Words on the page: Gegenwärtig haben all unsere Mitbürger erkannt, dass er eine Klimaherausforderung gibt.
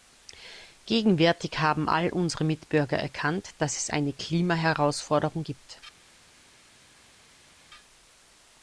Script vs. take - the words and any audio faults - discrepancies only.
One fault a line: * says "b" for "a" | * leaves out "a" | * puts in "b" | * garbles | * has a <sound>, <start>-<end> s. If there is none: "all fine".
* says "es" for "er"